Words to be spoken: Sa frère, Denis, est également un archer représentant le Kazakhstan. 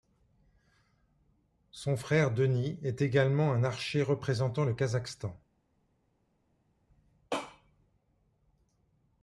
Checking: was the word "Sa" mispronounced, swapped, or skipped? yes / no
yes